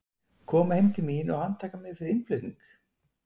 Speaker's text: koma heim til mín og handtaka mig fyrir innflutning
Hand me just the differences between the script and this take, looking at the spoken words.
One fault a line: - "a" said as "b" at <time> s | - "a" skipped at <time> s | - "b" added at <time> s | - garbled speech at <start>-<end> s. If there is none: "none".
none